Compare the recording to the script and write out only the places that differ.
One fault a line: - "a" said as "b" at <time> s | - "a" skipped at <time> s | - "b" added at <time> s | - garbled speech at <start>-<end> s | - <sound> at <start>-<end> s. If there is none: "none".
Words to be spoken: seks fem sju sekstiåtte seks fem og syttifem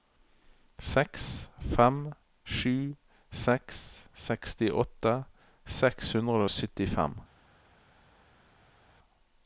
- "seks" added at 3.4 s
- "fem" said as "hundre" at 6.2 s